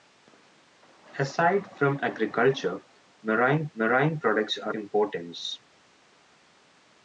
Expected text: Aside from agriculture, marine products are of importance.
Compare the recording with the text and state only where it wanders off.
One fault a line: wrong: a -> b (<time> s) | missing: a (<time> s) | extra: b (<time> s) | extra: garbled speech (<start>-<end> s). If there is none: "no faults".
extra: marine (3.7 s)
missing: of (4.8 s)